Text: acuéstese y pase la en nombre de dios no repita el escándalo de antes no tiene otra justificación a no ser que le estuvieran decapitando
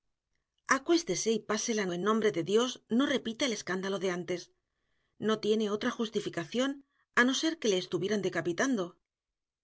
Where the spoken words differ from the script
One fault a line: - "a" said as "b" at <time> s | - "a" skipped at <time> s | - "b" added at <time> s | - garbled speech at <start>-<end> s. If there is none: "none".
none